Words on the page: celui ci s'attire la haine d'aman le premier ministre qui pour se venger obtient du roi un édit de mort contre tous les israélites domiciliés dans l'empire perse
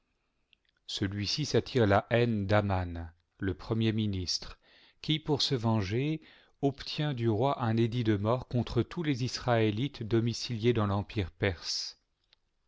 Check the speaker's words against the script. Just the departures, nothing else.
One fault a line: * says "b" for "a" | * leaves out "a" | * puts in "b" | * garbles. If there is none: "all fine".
all fine